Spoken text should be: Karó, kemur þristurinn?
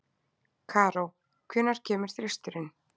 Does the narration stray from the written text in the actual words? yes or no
yes